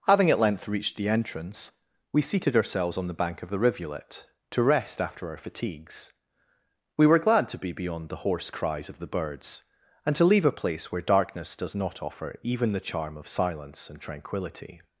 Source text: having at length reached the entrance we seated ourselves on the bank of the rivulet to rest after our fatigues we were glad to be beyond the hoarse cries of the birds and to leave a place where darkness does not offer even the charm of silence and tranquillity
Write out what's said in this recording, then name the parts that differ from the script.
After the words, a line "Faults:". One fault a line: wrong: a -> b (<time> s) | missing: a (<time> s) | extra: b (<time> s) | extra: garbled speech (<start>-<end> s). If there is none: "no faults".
having at length reached the entrance we seated ourselves on the bank of the rivulet to rest after our fatigues we were glad to be beyond the hoarse cries of the birds and to leave a place where darkness does not offer even the charm of silence and tranquillity
Faults:
no faults